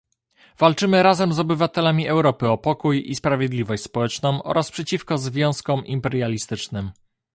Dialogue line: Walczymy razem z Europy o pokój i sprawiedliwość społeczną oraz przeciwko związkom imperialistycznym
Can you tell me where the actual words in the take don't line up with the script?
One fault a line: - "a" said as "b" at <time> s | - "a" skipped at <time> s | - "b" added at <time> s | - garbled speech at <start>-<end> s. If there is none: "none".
- "obywatelami" added at 1.4 s